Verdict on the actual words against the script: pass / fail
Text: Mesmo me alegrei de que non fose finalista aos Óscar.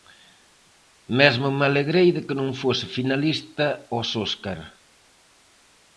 pass